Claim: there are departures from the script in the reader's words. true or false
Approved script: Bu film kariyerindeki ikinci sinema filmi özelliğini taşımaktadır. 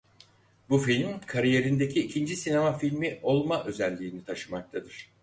true